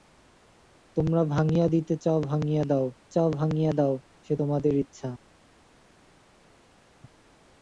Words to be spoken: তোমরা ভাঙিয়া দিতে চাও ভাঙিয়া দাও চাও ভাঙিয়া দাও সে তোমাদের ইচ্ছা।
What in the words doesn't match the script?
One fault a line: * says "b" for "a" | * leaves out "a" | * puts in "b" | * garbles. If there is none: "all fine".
all fine